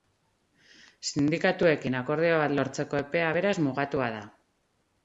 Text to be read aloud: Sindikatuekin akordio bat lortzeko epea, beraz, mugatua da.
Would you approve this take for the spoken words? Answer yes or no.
yes